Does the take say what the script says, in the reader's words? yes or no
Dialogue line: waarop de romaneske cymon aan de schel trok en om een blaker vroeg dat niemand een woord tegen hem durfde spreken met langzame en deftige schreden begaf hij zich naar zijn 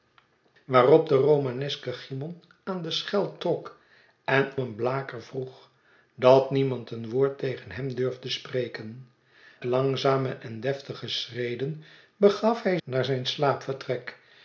no